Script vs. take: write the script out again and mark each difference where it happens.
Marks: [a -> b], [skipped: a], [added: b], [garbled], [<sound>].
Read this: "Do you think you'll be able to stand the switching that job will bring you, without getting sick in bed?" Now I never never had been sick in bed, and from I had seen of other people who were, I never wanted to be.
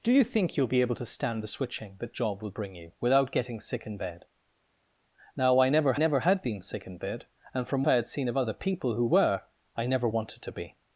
"Do you think you'll be able to stand the switching that job will bring you, without getting sick in bed?" Now I never never had been sick in bed, and from I had seen of other people who were, I never wanted to be.